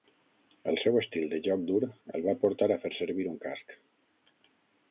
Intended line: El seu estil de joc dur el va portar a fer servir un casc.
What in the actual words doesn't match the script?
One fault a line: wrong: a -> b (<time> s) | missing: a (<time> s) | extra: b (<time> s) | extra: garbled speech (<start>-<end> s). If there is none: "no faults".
no faults